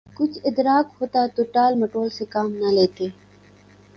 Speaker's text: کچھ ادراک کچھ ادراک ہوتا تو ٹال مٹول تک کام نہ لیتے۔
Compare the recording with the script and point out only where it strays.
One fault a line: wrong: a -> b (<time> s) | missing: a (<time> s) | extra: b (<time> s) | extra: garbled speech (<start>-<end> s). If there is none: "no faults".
missing: کچھ ادراک (0.9 s)
wrong: تک -> سے (2.1 s)